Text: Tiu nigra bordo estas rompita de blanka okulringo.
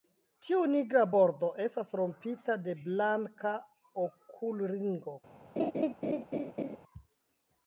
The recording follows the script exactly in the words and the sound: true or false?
false